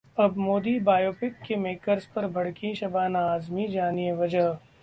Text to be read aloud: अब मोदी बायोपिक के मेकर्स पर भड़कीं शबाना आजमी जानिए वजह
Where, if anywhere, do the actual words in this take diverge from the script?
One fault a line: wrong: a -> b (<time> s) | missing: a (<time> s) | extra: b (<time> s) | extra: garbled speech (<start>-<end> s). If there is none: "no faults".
no faults